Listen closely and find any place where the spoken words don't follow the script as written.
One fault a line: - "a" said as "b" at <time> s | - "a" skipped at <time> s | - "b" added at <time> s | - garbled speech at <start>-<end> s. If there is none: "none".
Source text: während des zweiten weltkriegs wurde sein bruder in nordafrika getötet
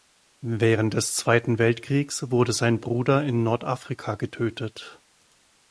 none